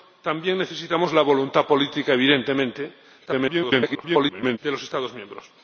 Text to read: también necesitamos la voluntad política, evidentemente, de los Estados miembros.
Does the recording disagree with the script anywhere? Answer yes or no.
yes